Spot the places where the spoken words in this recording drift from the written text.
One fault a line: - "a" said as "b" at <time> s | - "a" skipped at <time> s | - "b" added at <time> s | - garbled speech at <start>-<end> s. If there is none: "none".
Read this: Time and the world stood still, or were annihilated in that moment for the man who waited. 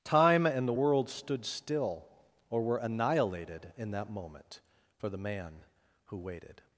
none